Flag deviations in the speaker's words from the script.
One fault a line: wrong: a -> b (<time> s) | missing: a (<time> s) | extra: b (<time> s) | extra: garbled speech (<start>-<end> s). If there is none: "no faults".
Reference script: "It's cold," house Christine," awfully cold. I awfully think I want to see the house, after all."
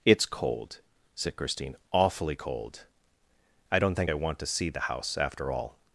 wrong: house -> said (1.1 s)
wrong: awfully -> don't (3.8 s)